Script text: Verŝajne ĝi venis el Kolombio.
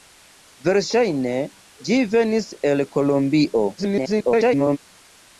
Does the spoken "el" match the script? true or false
true